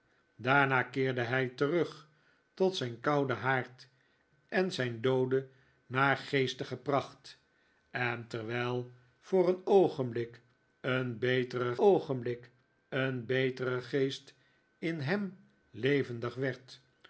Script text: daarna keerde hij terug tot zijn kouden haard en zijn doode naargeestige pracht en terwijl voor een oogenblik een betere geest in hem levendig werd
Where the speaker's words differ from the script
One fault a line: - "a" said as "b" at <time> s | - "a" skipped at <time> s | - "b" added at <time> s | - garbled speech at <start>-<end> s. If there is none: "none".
- "oogenblik een betere" added at 11.8 s